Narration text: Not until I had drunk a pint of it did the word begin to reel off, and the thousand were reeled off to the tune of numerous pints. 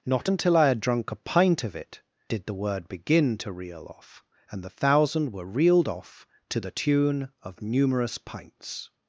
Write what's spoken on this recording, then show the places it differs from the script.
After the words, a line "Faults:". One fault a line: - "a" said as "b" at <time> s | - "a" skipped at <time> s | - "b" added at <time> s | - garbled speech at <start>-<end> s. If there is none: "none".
Not until I had drunk a pint of it did the word begin to reel off, and the thousand were reeled off to the tune of numerous pints.
Faults:
none